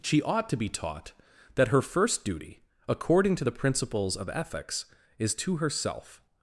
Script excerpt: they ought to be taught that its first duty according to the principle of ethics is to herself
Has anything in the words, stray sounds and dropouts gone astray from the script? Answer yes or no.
yes